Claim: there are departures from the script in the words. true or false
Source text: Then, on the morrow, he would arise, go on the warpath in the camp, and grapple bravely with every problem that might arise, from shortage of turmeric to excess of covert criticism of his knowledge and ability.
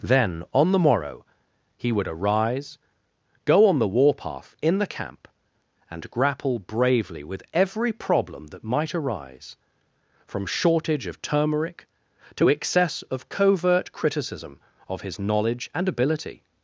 false